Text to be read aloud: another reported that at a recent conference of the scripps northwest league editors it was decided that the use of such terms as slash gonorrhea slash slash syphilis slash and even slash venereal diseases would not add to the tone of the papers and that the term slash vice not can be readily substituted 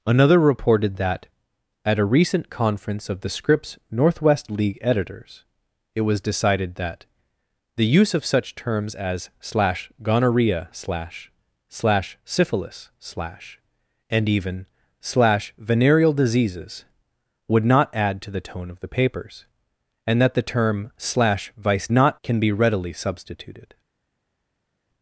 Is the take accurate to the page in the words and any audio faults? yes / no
yes